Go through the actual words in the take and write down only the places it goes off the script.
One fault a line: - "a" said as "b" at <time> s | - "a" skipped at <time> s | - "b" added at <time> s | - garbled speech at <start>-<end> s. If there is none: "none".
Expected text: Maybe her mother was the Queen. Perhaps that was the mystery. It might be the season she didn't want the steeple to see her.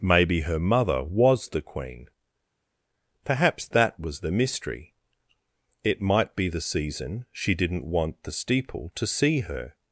none